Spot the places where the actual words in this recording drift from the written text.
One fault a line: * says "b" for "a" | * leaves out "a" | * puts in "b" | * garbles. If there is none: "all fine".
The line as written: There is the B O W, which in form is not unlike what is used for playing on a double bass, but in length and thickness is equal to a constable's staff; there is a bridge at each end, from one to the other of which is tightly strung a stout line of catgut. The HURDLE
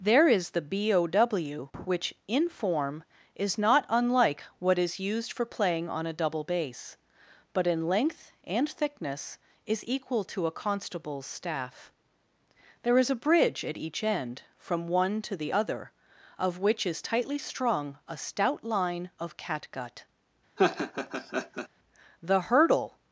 all fine